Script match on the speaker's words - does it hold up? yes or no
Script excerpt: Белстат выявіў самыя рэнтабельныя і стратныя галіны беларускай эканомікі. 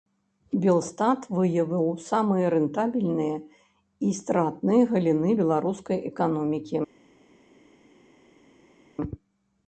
yes